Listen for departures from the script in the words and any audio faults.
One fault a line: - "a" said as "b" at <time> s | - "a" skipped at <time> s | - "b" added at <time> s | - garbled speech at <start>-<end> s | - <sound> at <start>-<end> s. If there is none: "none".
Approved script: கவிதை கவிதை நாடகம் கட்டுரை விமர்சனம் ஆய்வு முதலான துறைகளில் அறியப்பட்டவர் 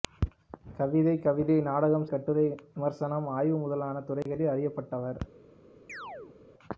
- dropout at 4.2-4.3 s
- chirp at 5.9-6.4 s